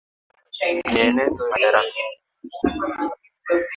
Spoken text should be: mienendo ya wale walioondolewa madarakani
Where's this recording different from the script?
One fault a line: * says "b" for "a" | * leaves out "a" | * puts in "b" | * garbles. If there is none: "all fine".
* leaves out "ya wale walioondolewa"